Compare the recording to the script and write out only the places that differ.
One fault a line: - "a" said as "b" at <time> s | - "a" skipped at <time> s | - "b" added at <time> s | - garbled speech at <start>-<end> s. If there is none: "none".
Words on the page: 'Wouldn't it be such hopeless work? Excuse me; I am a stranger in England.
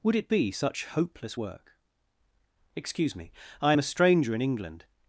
- "Wouldn't" said as "Would" at 0.0 s